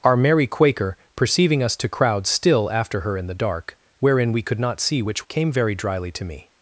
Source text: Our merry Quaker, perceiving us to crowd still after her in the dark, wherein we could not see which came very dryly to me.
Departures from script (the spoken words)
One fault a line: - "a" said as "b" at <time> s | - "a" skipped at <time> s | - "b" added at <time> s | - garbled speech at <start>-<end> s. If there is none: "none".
none